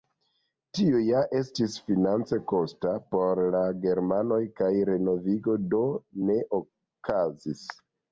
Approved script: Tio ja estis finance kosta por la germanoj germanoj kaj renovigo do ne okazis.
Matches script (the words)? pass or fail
fail